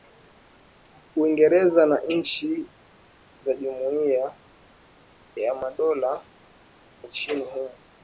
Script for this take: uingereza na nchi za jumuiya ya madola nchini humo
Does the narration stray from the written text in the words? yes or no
no